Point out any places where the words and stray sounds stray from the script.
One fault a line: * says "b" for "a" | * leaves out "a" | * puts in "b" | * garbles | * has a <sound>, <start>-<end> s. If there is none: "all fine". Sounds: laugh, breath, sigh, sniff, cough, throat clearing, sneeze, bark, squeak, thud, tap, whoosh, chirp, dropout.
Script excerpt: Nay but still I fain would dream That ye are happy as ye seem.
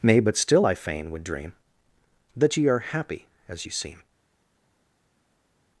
all fine